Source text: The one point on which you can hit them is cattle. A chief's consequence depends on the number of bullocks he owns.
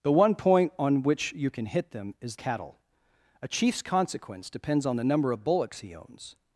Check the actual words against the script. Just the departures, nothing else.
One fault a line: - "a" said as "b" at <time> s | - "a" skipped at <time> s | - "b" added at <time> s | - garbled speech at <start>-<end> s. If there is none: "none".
none